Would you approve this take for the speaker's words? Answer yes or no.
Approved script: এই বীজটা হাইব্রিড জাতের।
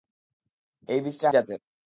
no